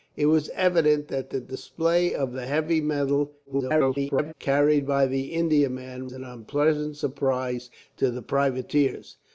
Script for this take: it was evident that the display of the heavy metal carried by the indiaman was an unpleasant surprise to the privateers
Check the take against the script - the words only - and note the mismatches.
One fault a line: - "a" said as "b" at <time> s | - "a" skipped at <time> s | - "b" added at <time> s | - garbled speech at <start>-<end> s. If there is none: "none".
- garbled speech at 3.4-4.3 s
- "was" skipped at 6.1 s